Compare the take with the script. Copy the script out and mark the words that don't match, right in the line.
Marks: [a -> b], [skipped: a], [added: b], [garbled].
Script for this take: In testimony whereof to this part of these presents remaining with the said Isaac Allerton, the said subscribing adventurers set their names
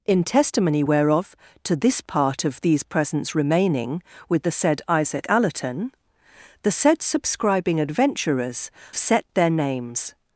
In testimony whereof to this part of these presents remaining with the said Isaac Allerton, the said subscribing adventurers set their names